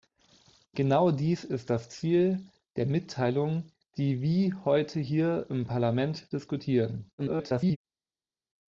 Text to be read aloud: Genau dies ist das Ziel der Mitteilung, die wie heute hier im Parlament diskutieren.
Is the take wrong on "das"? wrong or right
right